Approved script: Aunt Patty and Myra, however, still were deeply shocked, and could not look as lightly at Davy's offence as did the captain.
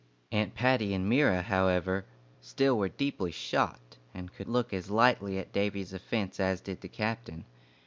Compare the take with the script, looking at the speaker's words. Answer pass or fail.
fail